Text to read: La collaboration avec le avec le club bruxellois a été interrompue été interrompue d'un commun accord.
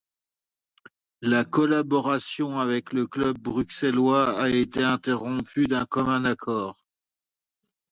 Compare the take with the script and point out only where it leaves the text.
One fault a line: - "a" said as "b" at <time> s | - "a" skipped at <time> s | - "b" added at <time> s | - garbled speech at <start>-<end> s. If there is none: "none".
- "avec le" skipped at 3.0 s
- "été interrompue" skipped at 5.7 s